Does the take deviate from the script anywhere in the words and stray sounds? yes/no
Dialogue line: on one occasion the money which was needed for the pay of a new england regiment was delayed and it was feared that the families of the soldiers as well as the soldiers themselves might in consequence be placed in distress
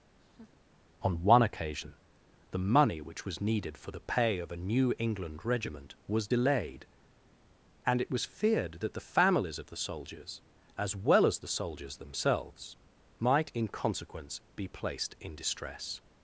yes